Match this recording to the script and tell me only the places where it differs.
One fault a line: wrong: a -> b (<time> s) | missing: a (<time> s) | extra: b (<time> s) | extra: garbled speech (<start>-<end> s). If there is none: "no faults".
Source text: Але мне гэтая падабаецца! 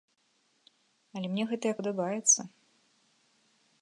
no faults